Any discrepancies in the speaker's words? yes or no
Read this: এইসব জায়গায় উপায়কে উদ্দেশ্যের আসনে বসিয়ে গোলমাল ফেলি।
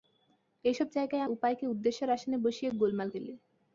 no